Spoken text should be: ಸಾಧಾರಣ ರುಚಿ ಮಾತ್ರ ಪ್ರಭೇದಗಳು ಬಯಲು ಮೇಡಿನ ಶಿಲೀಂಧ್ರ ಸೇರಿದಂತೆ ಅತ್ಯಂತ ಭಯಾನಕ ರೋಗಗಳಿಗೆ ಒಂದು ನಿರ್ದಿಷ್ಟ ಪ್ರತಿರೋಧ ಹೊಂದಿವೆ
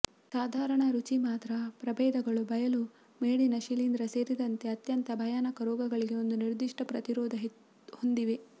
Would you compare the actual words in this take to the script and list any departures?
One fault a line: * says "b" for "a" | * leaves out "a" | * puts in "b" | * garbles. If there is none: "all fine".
all fine